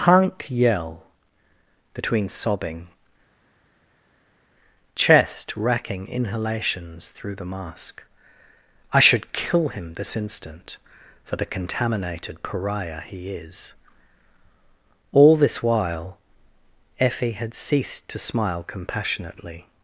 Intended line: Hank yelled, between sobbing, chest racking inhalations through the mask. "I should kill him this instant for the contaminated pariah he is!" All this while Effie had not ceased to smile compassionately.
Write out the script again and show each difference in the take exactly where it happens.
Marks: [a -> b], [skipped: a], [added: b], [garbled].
Hank [yelled, -> yell] between sobbing, chest racking inhalations through the mask. "I should kill him this instant for the contaminated pariah he is!" All this while Effie had [skipped: not] ceased to smile compassionately.